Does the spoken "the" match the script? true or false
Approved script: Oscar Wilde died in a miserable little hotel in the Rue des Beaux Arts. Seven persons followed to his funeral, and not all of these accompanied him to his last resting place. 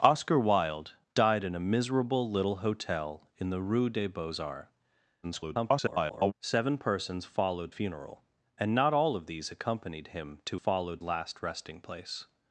true